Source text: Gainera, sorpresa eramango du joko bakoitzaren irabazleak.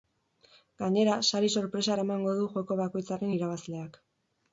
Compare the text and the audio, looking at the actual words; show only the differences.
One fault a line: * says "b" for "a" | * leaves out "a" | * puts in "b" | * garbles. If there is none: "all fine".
* puts in "sari"